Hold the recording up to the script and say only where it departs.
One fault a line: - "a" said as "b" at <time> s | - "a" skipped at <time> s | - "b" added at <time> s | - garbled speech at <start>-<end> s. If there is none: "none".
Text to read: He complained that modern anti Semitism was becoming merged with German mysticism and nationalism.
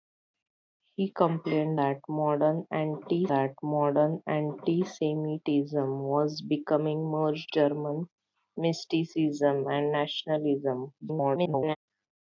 - "that modern anti" added at 3.3 s
- "with" skipped at 7.5 s
- garbled speech at 11.0-11.8 s